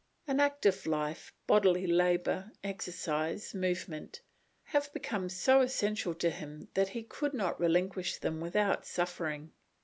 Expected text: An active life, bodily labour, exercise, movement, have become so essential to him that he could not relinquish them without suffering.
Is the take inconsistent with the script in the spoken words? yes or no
no